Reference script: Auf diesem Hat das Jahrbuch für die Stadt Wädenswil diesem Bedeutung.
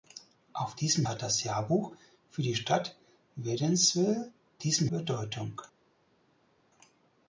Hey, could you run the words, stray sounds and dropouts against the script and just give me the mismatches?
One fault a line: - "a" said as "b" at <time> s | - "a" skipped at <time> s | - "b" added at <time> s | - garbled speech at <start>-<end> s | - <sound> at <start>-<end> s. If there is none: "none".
none